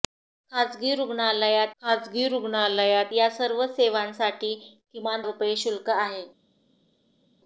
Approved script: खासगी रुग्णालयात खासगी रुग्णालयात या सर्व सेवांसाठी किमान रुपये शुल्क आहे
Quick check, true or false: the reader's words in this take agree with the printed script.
true